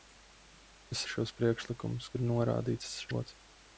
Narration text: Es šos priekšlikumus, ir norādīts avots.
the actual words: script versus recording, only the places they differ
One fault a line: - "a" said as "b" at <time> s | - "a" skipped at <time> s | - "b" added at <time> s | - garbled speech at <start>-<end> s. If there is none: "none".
none